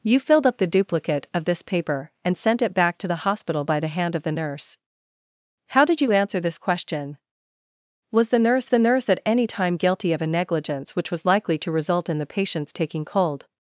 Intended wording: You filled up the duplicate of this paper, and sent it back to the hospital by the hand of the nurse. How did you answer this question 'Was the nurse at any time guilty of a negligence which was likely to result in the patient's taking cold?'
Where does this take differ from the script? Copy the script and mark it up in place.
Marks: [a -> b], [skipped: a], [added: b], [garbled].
You filled up the duplicate of this paper, and sent it back to the hospital by the hand of the nurse. How did you answer this question 'Was the nurse [added: the nurse] at any time guilty of a negligence which was likely to result in the patient's taking cold?'